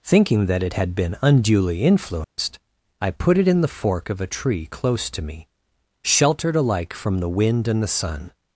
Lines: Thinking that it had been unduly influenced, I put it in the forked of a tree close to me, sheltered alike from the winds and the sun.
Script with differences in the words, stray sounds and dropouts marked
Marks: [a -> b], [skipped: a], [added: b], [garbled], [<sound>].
Thinking that it had been unduly influenced, [dropout] I put it in the [forked -> fork] of a tree close to me, sheltered alike from the [winds -> wind] and the sun.